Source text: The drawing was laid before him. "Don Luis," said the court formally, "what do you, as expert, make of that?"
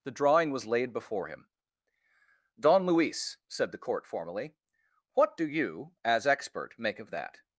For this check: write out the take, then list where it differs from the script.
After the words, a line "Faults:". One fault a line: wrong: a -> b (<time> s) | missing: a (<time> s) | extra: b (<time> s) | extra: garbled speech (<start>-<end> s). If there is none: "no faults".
The drawing was laid before him. "Don Luis," said the court formally, "what do you, as expert, make of that?"
Faults:
no faults